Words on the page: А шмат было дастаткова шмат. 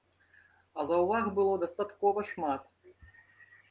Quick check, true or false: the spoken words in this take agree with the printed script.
false